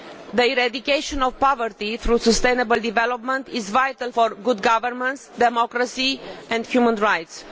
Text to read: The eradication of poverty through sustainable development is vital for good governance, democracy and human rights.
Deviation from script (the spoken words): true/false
false